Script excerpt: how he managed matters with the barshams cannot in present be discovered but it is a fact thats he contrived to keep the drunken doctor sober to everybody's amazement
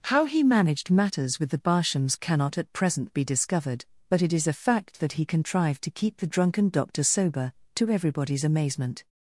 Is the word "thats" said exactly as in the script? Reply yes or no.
no